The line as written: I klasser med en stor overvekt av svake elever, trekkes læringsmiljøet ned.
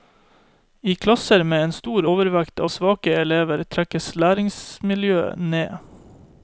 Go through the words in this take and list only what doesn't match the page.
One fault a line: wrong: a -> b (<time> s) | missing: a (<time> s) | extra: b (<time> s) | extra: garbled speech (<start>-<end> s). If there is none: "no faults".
no faults